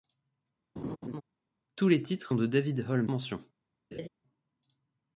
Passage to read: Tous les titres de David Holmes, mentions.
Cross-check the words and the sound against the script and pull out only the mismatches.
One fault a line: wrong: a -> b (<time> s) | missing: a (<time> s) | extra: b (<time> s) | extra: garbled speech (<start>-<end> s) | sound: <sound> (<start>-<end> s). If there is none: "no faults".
sound: laugh (0.8-1.2 s)
sound: laugh (3.9-4.1 s)